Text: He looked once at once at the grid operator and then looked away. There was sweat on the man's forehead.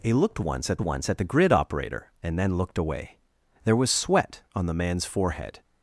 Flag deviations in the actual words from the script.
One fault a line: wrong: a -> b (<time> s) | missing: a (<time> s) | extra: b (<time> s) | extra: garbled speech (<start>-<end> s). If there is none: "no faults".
no faults